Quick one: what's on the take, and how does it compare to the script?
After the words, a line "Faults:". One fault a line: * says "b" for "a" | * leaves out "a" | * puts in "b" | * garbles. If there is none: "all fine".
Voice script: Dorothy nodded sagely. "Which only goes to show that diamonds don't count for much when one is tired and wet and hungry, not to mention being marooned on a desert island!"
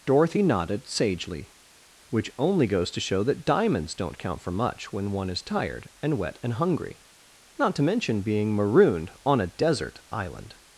Dorothy nodded sagely. "Which only goes to show that diamonds don't count for much when one is tired and wet and hungry, not to mention being marooned on a desert island!"
Faults:
all fine